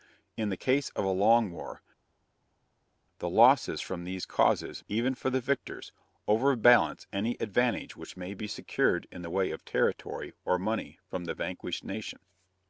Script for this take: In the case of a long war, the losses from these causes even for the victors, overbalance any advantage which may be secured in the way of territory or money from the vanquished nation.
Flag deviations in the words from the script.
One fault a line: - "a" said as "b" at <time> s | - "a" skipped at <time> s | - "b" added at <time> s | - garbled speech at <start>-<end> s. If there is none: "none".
none